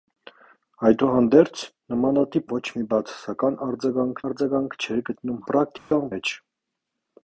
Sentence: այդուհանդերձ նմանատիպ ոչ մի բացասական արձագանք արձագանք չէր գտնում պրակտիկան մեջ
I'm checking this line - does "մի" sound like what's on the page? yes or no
yes